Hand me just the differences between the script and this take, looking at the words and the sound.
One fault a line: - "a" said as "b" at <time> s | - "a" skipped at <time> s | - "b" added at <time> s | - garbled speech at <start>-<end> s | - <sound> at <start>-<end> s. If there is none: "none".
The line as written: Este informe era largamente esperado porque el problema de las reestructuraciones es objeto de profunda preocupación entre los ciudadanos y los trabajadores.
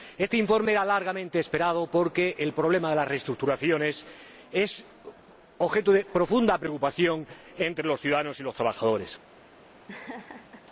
- laugh at 9.9-10.6 s